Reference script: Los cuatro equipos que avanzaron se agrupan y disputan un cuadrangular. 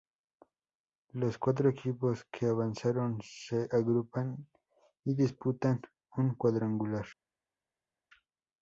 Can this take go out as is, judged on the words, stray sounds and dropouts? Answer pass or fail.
pass